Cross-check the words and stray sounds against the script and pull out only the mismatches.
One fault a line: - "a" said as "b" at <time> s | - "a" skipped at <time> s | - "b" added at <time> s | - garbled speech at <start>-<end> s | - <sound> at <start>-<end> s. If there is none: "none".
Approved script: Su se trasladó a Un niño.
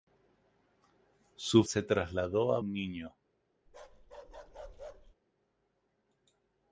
- bark at 3.7-5.1 s